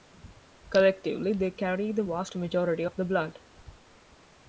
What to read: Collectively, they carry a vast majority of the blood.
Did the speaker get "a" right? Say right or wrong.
wrong